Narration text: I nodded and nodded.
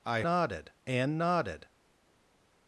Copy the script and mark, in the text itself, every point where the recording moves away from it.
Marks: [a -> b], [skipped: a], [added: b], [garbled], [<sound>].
I nodded and nodded.